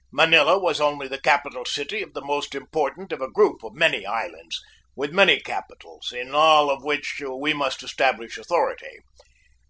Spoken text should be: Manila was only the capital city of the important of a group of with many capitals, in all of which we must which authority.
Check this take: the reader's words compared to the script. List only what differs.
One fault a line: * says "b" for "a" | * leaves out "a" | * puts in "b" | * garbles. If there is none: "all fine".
* puts in "most"
* puts in "many islands"
* says "establish" for "which"